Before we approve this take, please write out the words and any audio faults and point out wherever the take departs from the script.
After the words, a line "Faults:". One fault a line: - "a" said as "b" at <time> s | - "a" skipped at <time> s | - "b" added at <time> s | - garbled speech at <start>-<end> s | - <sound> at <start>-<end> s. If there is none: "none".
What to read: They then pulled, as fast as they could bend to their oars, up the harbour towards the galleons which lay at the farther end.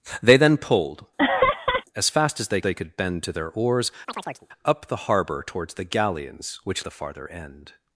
They then pulled, as fast as they they could bend to their oars, up the harbour towards the galleons which the farther end.
Faults:
- laugh at 1.2-1.8 s
- "they" added at 2.6 s
- chirp at 4.1-4.5 s
- "lay at" skipped at 6.8 s